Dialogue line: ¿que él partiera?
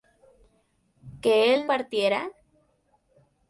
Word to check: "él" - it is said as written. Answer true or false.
true